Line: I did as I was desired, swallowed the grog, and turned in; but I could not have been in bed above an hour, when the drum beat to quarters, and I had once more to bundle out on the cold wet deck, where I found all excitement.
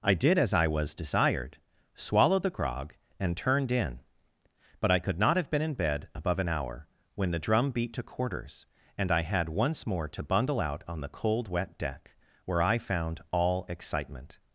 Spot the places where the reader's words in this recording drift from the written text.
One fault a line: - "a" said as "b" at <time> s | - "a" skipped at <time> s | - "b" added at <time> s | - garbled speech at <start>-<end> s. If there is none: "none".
none